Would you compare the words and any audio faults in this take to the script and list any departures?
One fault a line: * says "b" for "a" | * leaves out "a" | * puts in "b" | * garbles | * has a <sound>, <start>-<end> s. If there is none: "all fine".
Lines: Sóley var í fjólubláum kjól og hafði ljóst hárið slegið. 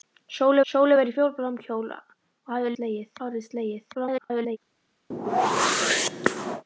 * puts in "sóley"
* says "slegið" for "ljóst"
* garbles
* has a whoosh, 5.1-6.6 s